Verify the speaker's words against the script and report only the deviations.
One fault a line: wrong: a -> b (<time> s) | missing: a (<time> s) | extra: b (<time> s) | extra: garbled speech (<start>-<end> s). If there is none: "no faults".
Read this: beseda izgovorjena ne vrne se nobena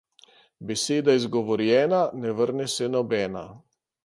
no faults